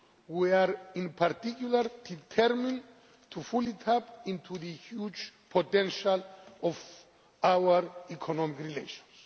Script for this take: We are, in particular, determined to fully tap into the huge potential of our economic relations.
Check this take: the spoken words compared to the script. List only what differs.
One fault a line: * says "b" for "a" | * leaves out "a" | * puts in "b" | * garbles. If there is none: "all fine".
all fine